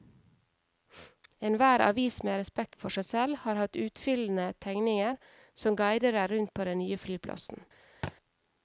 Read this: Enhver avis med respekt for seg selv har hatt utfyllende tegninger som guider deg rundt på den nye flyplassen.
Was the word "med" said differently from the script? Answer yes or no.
no